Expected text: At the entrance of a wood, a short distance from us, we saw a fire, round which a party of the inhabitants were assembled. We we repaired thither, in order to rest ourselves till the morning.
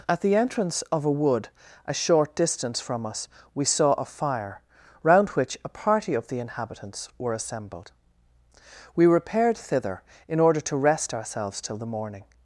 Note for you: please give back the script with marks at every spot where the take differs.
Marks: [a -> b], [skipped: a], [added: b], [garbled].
At the entrance of a wood, a short distance from us, we saw a fire, round which a party of the inhabitants were assembled. We [skipped: we] repaired thither, in order to rest ourselves till the morning.